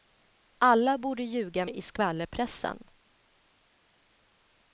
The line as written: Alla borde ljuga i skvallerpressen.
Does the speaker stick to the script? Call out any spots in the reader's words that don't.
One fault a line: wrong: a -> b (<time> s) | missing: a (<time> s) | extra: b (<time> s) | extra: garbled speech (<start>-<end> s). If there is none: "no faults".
no faults